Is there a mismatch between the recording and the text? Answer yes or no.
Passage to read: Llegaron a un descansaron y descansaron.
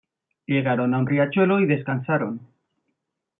yes